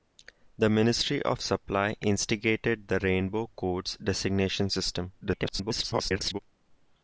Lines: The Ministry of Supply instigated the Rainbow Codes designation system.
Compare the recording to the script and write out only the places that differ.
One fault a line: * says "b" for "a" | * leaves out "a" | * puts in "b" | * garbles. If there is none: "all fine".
* garbles